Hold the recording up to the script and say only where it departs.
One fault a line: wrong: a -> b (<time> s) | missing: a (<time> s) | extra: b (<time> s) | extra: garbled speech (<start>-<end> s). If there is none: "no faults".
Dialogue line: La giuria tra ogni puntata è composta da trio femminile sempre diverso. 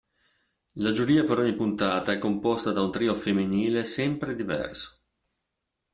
wrong: tra -> per (1.2 s)
extra: un (2.8 s)